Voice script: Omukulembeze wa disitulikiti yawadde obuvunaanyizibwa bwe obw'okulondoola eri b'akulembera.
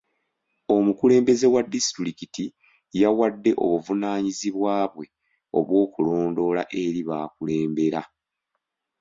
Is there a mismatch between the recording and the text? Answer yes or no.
no